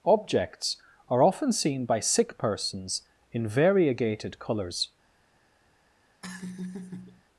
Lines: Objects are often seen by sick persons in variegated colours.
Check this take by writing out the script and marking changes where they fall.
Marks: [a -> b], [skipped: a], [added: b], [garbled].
Objects are often seen by sick persons in variegated colours.